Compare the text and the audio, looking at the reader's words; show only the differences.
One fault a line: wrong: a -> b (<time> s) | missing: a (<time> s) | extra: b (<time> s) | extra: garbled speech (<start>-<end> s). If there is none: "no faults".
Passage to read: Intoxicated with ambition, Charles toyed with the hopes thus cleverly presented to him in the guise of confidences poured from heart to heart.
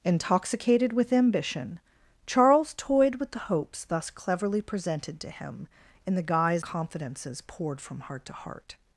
missing: of (6.7 s)